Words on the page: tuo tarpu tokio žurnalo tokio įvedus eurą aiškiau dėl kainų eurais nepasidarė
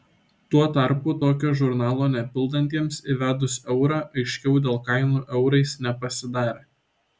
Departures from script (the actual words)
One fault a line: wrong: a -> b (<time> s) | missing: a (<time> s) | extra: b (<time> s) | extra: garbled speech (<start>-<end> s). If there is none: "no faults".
wrong: tokio -> nepildantiems (2.1 s)